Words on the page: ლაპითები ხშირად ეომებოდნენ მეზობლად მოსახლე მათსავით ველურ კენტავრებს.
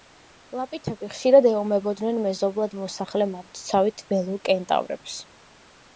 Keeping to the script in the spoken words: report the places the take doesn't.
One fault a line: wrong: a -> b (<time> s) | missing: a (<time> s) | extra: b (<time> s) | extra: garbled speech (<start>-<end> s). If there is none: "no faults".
no faults